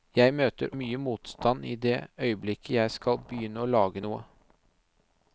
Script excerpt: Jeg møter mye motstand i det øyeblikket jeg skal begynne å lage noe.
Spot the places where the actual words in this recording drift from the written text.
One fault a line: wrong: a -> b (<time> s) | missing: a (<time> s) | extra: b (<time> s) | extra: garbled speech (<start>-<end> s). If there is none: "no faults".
no faults